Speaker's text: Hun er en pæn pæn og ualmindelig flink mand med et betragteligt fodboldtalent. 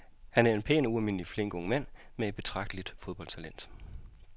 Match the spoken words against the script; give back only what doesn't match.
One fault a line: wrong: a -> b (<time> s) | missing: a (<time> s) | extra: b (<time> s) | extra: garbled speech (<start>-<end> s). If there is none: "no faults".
wrong: Hun -> Han (0.3 s)
missing: pæn (0.8 s)
extra: ung (1.5 s)